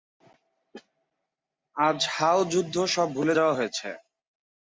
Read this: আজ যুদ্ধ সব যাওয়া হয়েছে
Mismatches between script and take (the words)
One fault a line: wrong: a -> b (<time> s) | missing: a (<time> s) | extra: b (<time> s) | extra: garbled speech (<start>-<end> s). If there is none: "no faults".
extra: হাও (2.1 s)
extra: ভুলে (3.1 s)